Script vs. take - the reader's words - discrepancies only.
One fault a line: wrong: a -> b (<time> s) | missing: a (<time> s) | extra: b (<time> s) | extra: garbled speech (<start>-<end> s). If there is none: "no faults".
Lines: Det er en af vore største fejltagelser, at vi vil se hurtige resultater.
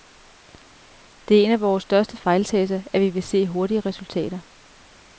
no faults